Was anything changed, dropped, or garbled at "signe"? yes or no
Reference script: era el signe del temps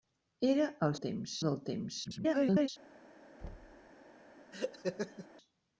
yes